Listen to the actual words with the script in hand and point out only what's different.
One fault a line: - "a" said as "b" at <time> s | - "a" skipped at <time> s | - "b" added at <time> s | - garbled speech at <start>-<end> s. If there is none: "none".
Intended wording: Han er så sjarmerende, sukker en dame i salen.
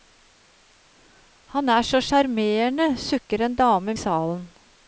none